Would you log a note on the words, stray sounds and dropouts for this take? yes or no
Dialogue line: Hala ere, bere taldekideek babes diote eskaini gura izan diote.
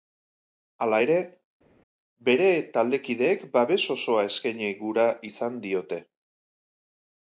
yes